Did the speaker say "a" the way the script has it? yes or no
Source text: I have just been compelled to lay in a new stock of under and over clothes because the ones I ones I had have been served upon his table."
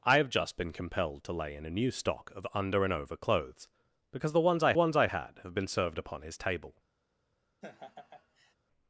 yes